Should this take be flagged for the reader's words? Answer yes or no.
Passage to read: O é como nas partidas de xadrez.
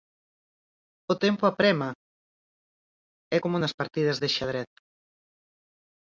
yes